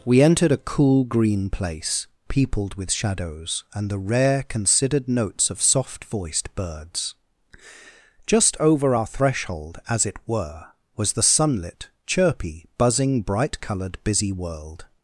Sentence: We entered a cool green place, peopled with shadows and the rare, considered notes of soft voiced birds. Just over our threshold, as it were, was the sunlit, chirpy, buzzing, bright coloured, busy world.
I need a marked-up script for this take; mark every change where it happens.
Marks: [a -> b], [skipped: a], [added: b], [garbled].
We entered a cool green place, peopled with shadows and the rare, considered notes of soft voiced birds. Just over our threshold, as it were, was the sunlit, chirpy, buzzing, bright coloured, busy world.